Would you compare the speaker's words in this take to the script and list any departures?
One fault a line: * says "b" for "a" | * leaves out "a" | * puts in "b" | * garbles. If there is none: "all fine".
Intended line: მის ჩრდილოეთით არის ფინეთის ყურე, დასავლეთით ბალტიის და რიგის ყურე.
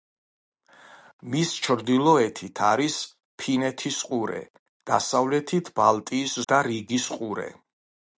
all fine